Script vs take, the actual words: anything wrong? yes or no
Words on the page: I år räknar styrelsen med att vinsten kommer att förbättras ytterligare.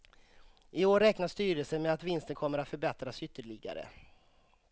no